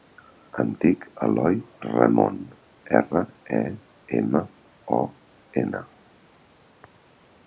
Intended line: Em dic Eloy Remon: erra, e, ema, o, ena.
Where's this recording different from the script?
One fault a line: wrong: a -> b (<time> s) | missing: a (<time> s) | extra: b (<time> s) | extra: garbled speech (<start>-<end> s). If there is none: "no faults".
no faults